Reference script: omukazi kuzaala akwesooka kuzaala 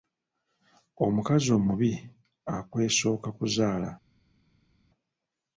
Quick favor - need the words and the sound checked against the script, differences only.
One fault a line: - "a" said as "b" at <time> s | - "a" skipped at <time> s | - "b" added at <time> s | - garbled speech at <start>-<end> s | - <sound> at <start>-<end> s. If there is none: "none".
- "kuzaala" said as "omubi" at 1.6 s